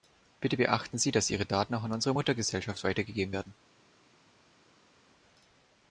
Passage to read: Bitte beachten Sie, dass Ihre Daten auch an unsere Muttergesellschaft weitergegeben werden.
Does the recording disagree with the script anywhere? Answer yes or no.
no